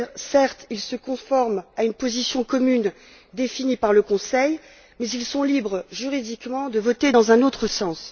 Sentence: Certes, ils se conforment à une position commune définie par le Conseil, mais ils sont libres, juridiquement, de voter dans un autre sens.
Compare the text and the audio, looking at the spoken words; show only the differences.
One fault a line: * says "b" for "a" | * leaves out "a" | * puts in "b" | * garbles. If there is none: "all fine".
all fine